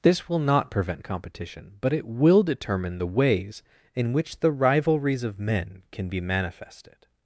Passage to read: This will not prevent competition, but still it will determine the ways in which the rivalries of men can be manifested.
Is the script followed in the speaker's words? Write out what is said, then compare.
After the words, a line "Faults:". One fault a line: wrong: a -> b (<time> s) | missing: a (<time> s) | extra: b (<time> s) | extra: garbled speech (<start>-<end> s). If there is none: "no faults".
This will not prevent competition, but it will determine the ways in which the rivalries of men can be manifested.
Faults:
missing: still (1.9 s)